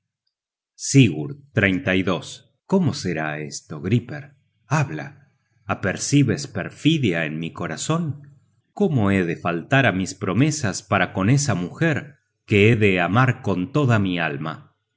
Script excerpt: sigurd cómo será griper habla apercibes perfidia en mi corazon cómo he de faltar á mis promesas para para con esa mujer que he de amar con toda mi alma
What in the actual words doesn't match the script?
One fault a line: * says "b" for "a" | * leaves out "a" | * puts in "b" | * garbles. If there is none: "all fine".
* puts in "esto"
* leaves out "para"